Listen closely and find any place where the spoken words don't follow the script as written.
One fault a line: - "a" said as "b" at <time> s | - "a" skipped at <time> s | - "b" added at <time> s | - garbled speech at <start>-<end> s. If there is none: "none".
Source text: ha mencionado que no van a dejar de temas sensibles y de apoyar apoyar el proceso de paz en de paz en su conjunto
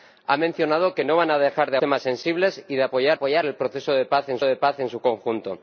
none